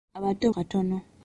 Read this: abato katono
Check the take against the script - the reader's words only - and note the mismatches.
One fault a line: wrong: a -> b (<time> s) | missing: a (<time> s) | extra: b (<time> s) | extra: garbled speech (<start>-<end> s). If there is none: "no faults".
no faults